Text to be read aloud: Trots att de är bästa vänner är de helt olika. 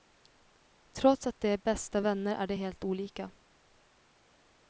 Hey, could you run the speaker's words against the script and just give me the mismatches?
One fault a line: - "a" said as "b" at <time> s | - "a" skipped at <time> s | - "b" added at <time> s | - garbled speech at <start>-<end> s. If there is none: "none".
none